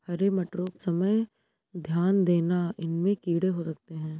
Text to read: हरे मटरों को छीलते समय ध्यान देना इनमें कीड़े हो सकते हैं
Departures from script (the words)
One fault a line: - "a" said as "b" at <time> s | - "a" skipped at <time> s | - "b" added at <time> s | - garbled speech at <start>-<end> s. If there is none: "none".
- "को छीलते" skipped at 0.7 s